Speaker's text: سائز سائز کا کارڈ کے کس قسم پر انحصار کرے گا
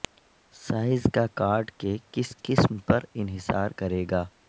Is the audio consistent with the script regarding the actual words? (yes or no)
no